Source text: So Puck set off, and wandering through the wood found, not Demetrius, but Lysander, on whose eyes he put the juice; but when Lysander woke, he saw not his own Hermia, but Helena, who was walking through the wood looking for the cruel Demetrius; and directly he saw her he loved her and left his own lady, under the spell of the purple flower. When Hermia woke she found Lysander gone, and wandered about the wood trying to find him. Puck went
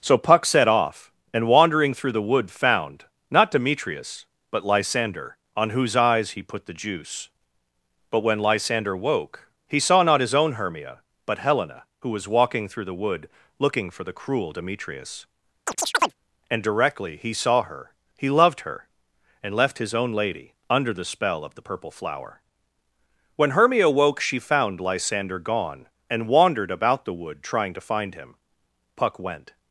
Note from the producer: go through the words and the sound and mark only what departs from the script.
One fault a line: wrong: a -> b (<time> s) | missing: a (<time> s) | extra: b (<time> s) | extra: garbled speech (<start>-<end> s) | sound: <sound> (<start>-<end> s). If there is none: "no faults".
sound: chirp (15.7-16.1 s)